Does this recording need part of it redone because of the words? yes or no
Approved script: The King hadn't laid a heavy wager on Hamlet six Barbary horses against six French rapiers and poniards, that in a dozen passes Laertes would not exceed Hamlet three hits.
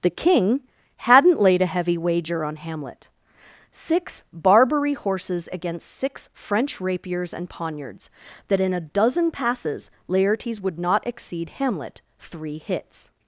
no